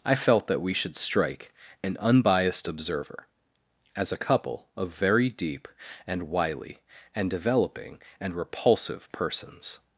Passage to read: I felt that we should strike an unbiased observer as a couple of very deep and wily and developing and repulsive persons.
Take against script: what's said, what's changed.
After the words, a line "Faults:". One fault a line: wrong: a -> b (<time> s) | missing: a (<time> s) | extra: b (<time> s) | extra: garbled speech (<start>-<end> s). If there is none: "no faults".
I felt that we should strike an unbiased observer as a couple of very deep and wily and developing and repulsive persons.
Faults:
no faults